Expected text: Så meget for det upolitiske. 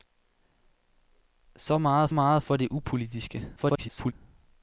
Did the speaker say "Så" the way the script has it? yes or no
yes